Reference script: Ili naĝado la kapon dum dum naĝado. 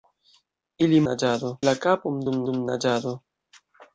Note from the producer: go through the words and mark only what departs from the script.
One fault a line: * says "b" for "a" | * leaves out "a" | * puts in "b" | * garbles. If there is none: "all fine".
all fine